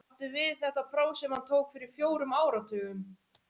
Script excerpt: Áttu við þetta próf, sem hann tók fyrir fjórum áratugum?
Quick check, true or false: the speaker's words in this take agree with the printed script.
true